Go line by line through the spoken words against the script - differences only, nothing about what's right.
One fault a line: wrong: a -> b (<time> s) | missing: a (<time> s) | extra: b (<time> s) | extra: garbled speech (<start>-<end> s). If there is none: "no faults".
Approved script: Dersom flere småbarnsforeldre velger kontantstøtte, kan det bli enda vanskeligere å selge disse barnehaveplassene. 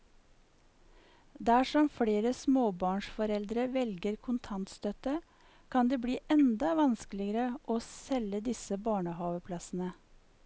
no faults